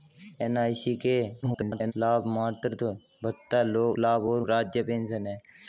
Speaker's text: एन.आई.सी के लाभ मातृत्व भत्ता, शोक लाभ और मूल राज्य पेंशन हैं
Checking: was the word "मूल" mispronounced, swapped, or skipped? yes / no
yes